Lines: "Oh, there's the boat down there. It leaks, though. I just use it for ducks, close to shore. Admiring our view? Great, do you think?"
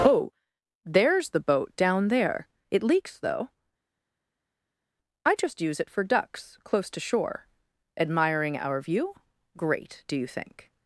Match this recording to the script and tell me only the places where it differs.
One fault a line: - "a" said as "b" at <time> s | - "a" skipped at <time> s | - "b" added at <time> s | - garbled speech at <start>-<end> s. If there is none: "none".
none